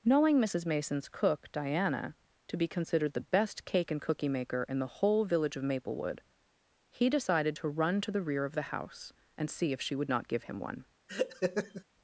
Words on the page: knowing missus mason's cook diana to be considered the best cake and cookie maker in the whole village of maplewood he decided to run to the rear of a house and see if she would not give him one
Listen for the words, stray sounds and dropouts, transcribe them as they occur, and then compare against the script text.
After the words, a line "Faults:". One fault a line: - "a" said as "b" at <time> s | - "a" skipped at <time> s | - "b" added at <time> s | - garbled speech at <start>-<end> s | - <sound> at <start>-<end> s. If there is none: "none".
knowing missus mason's cook diana to be considered the best cake and cookie maker in the whole village of maplewood he decided to run to the rear of the house and see if she would not give him one
Faults:
- "a" said as "the" at 8.5 s
- laugh at 11.1-11.8 s